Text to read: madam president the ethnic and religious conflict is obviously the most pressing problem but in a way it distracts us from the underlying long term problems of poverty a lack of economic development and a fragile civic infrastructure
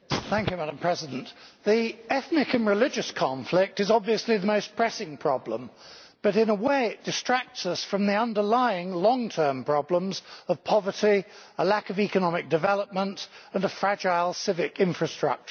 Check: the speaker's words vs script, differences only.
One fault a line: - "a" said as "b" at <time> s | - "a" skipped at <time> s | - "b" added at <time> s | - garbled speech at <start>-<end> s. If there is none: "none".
none